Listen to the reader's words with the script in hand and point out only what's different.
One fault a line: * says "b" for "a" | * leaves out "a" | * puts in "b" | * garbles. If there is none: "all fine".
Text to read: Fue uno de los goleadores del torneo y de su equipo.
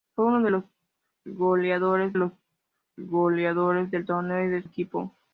* puts in "los goleadores"
* leaves out "su"